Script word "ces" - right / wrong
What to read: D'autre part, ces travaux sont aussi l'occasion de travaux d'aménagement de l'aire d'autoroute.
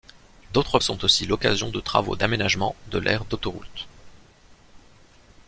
wrong